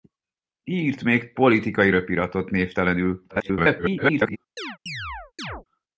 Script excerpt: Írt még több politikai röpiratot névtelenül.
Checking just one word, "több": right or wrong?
wrong